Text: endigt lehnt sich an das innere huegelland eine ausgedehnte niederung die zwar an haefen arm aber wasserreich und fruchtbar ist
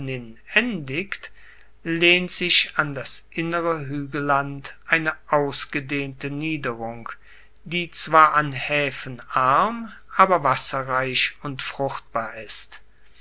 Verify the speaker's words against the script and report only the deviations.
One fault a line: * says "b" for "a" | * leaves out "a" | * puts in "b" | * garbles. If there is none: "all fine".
all fine